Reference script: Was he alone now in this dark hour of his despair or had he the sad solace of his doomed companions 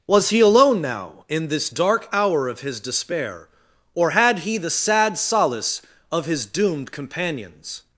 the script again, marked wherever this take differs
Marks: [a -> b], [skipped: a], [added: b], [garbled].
Was he alone now in this dark hour of his despair or had he the sad solace of his doomed companions